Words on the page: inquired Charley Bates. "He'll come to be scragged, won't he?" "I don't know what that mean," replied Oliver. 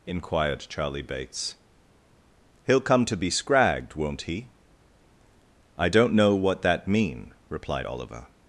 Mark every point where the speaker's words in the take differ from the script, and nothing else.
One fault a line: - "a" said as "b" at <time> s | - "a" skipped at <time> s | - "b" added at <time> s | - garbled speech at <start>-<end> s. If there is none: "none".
none